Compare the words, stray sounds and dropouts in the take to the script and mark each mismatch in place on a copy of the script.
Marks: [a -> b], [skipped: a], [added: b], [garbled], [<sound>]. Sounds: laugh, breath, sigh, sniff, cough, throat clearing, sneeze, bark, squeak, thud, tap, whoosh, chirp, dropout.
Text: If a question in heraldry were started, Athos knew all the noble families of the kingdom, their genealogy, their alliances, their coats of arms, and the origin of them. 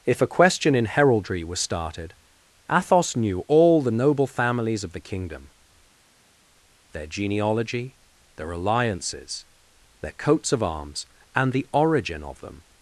If a question in heraldry [were -> was] started, Athos knew all the noble families of the kingdom, their genealogy, their alliances, their coats of arms, and the origin of them.